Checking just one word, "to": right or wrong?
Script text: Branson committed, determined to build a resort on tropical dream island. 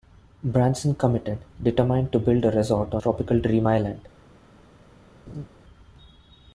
right